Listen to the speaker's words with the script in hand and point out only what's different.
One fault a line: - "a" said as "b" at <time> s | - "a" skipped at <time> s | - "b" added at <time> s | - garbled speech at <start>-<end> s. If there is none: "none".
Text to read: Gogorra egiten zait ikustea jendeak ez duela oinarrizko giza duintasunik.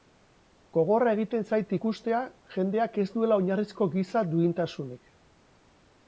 none